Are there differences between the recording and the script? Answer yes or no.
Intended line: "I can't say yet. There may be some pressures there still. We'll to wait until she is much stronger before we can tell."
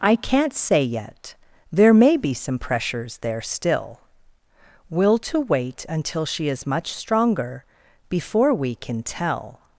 no